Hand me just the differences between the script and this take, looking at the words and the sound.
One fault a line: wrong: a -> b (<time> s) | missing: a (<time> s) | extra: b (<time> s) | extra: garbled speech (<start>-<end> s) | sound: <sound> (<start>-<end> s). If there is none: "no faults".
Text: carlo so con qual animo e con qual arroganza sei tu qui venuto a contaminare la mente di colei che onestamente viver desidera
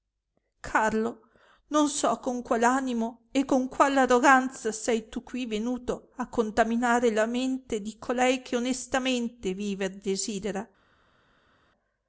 extra: non (1.7 s)